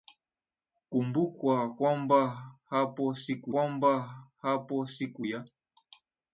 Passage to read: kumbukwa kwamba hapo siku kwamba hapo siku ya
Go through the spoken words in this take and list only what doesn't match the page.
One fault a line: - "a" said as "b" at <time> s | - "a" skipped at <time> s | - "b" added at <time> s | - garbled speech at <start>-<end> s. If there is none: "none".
none